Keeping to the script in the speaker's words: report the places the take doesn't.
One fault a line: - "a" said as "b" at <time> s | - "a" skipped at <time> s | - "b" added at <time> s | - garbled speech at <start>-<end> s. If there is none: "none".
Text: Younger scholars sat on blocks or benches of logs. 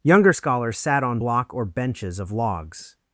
- "blocks" said as "block" at 1.1 s